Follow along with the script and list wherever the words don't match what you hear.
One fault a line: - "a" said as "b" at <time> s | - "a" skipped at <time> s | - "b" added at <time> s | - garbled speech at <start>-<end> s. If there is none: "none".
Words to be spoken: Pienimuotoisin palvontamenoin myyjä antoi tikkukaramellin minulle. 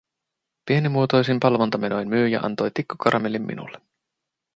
none